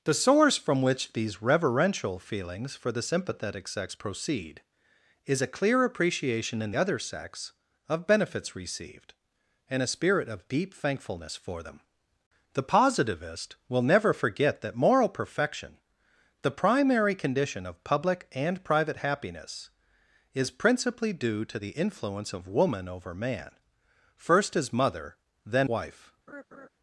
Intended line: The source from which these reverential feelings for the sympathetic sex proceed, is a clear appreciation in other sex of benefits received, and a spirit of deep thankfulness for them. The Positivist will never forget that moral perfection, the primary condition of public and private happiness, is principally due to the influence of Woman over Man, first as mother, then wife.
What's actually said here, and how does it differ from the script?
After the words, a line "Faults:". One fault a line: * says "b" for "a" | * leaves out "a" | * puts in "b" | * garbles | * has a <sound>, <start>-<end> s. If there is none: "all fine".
The source from which these reverential feelings for the sympathetic sex proceed, is a clear appreciation in other sex of benefits received, and a spirit of deep thankfulness for them. The Positivist will never forget that moral perfection, the primary condition of public and private happiness, is principally due to the influence of Woman over Man, first as mother, then wife.
Faults:
* has a laugh, 26.3-26.7 s